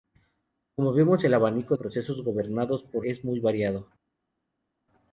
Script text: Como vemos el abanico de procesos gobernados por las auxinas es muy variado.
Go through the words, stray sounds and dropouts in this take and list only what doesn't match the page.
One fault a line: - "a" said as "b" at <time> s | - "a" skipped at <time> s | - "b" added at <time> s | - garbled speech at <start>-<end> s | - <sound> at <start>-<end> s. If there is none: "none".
- "de" skipped at 1.8 s
- "las auxinas" skipped at 3.1 s